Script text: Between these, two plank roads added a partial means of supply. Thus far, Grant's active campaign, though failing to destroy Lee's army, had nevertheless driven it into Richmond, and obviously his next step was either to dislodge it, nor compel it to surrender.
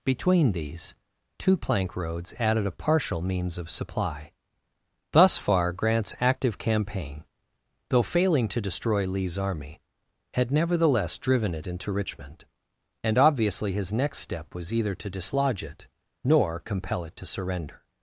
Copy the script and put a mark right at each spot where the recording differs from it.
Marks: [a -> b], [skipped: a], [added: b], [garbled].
Between these, two plank roads added a partial means of supply. Thus far, Grant's active campaign, though failing to destroy Lee's army, had nevertheless driven it into Richmond, and obviously his next step was either to dislodge it, nor compel it to surrender.